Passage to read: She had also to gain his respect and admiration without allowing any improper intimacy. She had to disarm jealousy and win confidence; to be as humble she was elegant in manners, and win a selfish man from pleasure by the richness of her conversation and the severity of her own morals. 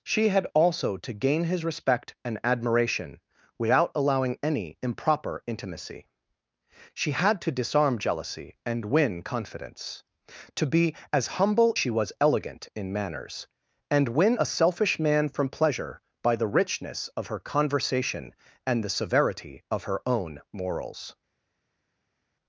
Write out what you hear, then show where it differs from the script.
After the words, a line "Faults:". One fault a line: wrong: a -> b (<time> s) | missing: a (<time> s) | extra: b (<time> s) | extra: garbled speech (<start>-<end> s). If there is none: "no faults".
She had also to gain his respect and admiration without allowing any improper intimacy. She had to disarm jealousy and win confidence; to be as humble she was elegant in manners, and win a selfish man from pleasure by the richness of her conversation and the severity of her own morals.
Faults:
no faults